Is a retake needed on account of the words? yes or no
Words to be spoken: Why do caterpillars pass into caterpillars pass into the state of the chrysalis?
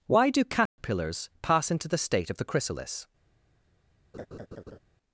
yes